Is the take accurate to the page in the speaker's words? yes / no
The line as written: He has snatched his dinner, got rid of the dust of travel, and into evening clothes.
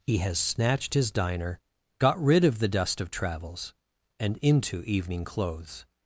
no